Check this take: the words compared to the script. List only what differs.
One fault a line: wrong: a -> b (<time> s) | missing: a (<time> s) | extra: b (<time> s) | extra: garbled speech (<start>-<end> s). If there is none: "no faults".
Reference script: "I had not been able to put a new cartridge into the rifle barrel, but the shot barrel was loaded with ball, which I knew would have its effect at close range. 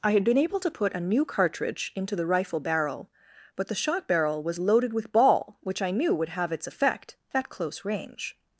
missing: not (0.2 s)